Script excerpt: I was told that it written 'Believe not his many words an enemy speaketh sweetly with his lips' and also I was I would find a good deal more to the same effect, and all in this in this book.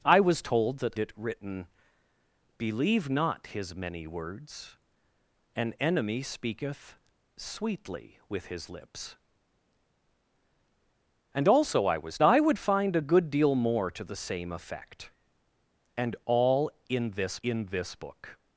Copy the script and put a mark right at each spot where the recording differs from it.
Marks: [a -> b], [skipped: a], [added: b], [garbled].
I was told that it written 'Believe not his many words an enemy speaketh sweetly with his lips' and also I was I would find a good deal more to the same effect, and all in this in this book.